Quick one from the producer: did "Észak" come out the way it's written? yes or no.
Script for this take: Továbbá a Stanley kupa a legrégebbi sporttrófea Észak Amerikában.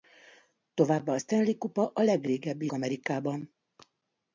no